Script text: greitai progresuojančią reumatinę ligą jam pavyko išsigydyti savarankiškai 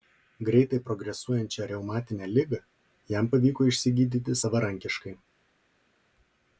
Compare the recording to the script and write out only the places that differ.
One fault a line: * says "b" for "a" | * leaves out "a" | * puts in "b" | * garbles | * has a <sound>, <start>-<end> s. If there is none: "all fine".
all fine